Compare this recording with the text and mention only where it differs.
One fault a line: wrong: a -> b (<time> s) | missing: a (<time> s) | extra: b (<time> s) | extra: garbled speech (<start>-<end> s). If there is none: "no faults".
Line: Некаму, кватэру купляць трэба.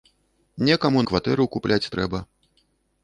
no faults